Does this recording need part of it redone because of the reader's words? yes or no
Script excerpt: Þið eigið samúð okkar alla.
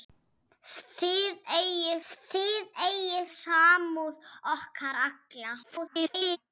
yes